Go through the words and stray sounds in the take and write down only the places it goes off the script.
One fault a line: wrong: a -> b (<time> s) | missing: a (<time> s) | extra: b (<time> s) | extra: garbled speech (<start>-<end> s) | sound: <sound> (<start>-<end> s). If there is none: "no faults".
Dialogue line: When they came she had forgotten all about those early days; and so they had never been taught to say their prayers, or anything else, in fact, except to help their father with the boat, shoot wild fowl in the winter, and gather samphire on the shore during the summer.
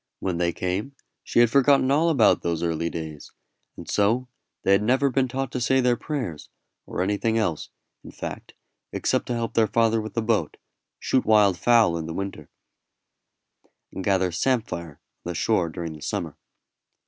no faults